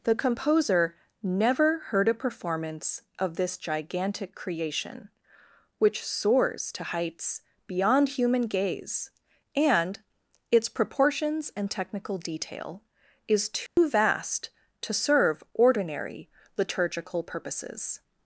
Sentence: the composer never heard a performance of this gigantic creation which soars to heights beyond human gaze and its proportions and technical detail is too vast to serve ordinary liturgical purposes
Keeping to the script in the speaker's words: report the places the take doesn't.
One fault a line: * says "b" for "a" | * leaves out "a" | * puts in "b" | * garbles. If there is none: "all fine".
all fine